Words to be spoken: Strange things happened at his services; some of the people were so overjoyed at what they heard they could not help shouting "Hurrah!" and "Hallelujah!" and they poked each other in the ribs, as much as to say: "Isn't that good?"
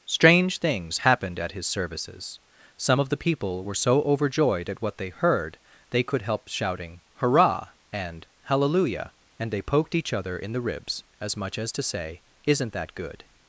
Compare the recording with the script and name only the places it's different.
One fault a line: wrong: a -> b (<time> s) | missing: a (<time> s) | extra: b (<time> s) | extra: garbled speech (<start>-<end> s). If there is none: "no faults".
missing: not (6.2 s)